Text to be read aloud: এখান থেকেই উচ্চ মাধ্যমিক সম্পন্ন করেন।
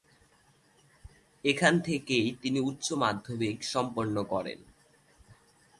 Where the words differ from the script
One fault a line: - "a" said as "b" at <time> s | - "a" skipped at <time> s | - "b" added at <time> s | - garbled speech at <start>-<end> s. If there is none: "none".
- "তিনি" added at 2.4 s